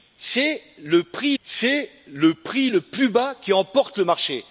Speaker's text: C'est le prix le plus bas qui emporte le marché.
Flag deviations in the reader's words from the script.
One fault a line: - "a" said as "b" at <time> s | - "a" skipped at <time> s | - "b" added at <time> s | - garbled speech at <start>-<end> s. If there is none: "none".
- "c'est le prix" added at 1.4 s